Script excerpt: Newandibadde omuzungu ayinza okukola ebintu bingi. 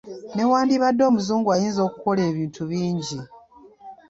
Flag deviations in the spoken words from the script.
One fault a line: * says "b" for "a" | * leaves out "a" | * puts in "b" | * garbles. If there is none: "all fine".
all fine